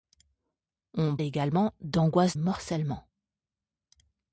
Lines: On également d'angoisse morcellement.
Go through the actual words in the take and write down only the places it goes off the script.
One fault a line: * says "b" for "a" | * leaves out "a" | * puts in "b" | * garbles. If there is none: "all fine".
all fine